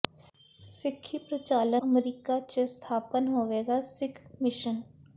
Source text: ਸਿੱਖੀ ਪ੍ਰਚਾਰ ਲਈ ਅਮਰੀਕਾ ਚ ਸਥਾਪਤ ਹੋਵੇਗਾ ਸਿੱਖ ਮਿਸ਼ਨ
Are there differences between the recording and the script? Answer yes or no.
yes